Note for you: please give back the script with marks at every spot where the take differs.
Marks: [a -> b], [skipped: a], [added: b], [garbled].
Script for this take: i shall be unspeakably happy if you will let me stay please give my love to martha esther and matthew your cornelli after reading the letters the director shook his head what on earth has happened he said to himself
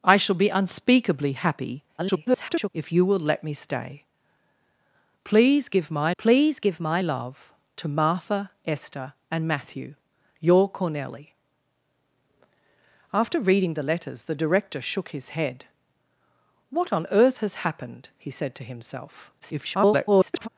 i shall be unspeakably happy [garbled] if you will let me stay please give my [added: please give my] love to martha esther and matthew your cornelli after reading the letters the director shook his head what on earth has happened he said to himself [garbled]